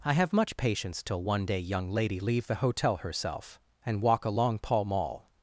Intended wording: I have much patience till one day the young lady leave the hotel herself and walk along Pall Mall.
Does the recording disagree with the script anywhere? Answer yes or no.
yes